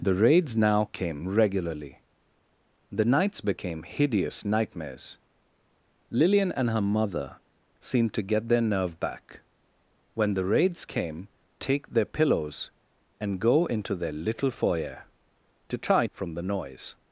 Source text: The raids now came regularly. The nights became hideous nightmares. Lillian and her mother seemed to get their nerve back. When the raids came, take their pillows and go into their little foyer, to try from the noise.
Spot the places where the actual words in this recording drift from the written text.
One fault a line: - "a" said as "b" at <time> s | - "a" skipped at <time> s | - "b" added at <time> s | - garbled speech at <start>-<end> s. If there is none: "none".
none